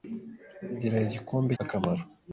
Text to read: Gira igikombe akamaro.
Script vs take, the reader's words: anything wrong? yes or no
no